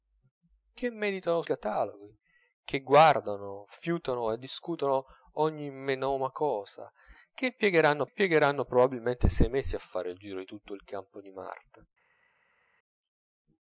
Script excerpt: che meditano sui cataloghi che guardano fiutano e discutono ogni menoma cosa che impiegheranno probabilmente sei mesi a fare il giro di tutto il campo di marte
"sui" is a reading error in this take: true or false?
true